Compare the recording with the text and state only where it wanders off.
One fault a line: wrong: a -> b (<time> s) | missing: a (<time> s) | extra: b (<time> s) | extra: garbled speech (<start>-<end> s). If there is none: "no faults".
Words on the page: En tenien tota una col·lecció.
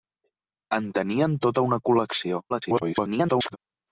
extra: garbled speech (2.5-3.6 s)